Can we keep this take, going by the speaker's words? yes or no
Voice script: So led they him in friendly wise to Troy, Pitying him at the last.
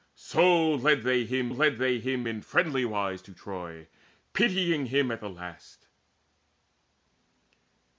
no